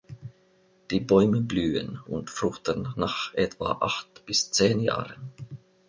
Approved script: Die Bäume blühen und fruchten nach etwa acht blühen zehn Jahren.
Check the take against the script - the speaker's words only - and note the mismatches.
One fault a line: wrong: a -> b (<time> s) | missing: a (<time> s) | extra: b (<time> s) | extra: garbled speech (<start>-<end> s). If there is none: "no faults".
wrong: blühen -> bis (4.3 s)